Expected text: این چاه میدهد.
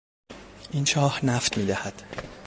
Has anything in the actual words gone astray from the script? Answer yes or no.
yes